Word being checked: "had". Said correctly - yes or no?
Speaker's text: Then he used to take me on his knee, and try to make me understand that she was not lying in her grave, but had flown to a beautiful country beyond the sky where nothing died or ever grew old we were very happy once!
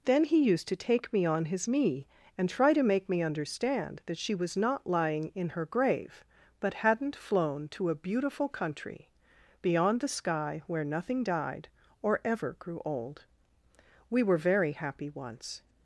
no